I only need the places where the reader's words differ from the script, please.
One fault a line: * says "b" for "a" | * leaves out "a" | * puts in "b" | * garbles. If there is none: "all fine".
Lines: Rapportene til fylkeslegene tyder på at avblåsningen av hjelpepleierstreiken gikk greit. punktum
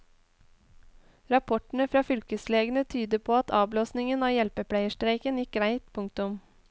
* says "fra" for "til"